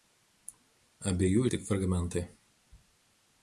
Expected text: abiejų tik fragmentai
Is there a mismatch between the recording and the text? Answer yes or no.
no